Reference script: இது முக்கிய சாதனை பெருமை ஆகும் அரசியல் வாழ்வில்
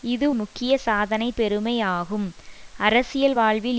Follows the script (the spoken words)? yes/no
yes